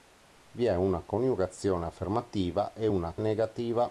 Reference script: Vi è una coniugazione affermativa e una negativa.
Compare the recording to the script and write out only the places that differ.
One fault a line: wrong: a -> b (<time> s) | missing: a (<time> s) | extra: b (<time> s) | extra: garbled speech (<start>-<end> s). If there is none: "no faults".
no faults